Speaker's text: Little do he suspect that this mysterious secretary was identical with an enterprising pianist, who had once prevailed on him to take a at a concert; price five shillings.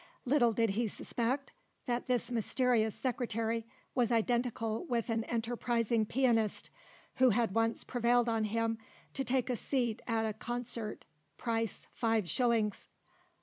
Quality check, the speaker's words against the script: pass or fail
fail